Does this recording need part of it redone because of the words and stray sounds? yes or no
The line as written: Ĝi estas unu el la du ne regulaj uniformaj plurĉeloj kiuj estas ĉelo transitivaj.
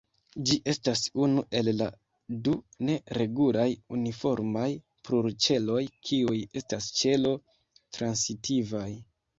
no